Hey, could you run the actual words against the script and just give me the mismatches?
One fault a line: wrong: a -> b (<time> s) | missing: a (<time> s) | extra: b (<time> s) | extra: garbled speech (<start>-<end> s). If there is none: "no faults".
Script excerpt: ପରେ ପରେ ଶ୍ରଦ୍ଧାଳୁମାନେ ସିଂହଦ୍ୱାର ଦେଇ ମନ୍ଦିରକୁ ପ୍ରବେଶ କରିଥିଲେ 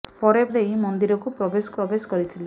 missing: ପରେ ଶ୍ରଦ୍ଧାଳୁମାନେ ସିଂହଦ୍ୱାର (0.4 s)
extra: ପ୍ରବେଶ (1.8 s)